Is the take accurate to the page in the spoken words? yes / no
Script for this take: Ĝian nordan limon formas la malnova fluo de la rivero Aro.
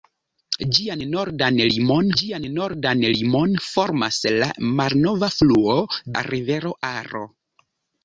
no